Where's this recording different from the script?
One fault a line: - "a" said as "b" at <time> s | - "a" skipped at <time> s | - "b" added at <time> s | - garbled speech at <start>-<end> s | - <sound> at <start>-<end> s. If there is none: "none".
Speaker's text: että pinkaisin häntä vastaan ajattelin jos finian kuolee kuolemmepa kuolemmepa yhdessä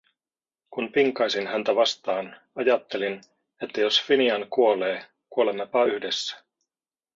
- "että" said as "kun" at 0.7 s
- "että" added at 3.6 s
- "kuolemmepa" skipped at 5.8 s